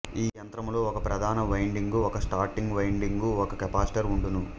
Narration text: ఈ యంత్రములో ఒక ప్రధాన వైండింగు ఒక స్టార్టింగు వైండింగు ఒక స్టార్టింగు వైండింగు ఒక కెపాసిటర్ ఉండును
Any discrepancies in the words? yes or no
yes